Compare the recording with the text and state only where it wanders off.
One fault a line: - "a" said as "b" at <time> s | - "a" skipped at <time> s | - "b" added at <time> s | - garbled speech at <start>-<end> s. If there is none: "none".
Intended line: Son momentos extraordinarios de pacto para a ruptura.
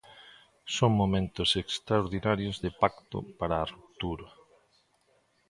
none